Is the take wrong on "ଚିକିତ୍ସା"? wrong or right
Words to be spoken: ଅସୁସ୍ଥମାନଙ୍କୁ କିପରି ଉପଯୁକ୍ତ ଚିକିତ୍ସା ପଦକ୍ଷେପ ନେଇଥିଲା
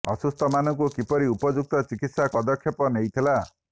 right